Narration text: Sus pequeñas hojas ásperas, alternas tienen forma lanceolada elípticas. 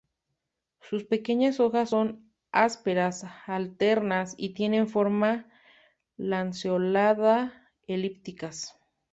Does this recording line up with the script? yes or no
no